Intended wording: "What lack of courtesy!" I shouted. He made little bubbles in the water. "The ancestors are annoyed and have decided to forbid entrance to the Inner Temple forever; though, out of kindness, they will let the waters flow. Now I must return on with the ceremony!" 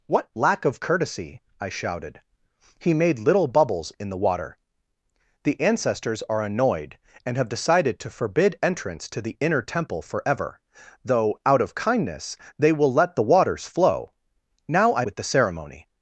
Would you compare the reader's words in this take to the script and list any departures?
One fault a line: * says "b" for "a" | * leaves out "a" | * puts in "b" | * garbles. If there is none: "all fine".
* leaves out "must return on"